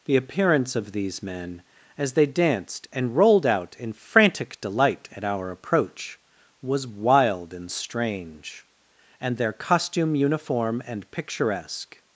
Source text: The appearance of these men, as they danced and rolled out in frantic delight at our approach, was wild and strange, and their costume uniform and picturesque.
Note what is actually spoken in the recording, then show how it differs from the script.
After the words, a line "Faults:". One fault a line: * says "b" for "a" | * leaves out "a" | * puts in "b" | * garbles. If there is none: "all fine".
The appearance of these men, as they danced and rolled out in frantic delight at our approach, was wild and strange, and their costume uniform and picturesque.
Faults:
all fine